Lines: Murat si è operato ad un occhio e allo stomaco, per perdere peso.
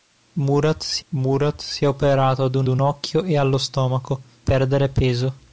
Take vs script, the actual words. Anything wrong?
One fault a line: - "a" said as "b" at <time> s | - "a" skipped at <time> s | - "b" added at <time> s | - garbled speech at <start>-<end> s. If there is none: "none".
- "murat si" added at 1.1 s
- "un" added at 2.7 s
- "per" skipped at 4.2 s